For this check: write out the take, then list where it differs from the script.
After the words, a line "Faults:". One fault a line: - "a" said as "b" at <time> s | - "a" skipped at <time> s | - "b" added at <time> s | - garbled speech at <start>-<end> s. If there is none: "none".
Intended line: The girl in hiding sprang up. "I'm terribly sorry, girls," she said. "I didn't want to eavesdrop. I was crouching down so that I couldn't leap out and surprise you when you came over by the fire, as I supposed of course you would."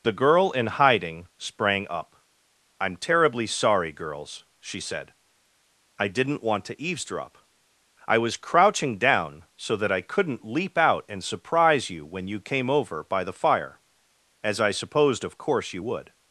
The girl in hiding sprang up. "I'm terribly sorry, girls," she said. "I didn't want to eavesdrop. I was crouching down so that I couldn't leap out and surprise you when you came over by the fire, as I supposed of course you would."
Faults:
none